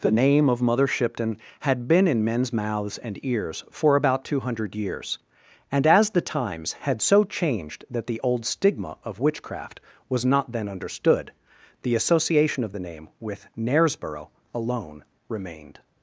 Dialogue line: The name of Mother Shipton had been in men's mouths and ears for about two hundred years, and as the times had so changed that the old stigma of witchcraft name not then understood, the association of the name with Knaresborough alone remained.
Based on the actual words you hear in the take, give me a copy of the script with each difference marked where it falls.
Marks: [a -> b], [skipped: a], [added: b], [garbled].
The name of Mother Shipton had been in men's mouths and ears for about two hundred years, and as the times had so changed that the old stigma of witchcraft [name -> was] not then understood, the association of the name with Knaresborough alone remained.